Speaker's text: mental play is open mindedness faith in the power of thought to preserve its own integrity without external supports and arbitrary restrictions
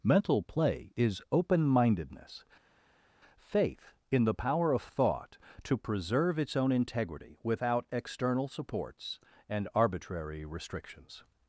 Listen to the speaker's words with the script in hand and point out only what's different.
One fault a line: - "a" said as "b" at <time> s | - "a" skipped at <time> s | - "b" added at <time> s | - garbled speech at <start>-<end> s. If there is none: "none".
none